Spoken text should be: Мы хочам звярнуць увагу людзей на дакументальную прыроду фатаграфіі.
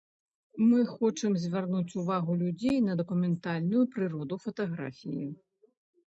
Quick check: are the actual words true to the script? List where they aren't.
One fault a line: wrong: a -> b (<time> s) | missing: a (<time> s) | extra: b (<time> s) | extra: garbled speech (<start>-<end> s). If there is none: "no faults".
no faults